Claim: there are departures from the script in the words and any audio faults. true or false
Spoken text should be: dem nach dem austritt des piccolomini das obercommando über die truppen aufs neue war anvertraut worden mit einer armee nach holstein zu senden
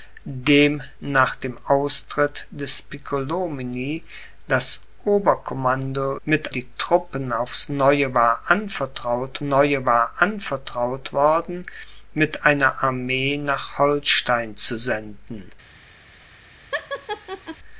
true